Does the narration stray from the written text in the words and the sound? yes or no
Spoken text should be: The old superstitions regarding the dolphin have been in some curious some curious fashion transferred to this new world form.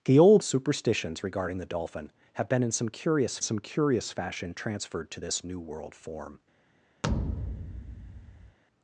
yes